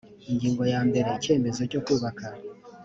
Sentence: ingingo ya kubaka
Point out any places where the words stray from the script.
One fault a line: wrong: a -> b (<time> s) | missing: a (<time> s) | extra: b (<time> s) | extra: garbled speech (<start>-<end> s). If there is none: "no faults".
extra: mbere icyemezo cyo (0.9 s)